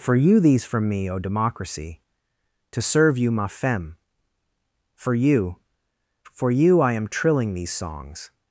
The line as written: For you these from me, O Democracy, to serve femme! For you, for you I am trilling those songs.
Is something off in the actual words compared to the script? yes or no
yes